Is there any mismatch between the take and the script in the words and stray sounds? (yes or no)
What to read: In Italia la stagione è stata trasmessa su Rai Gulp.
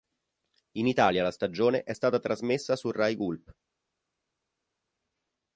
no